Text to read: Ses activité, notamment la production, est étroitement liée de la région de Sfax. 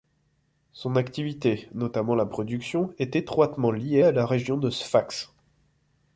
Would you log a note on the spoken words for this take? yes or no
yes